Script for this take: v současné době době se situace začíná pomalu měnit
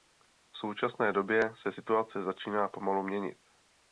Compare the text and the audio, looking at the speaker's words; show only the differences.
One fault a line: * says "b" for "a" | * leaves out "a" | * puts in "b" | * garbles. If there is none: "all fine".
* leaves out "době"